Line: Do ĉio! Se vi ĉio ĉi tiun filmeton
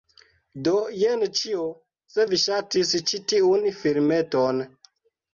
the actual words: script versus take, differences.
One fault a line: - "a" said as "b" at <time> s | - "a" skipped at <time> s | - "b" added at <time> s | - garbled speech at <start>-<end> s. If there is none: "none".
- "jen" added at 1.0 s
- "ĉio" said as "ŝatis" at 2.4 s